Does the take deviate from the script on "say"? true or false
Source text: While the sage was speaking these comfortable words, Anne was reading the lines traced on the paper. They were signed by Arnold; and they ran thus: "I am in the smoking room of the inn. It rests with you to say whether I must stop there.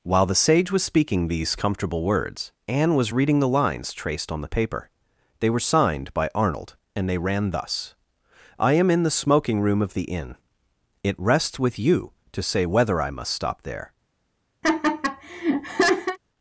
false